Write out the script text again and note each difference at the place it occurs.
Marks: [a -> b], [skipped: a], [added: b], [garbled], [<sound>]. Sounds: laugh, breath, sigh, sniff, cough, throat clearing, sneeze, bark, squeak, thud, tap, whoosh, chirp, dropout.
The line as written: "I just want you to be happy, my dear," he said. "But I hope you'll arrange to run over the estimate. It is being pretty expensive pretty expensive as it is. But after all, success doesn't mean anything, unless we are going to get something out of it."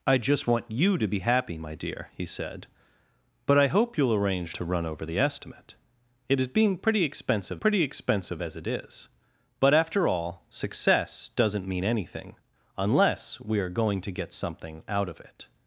"I just want you to be happy, my dear," he said. "But I hope you'll arrange to run over the estimate. It is being pretty expensive pretty expensive as it is. But after all, success doesn't mean anything, unless we are going to get something out of it."